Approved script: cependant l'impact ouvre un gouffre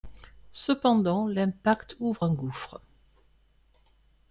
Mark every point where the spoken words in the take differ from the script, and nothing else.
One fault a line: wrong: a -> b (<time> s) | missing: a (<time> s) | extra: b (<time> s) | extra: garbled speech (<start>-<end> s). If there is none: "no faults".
no faults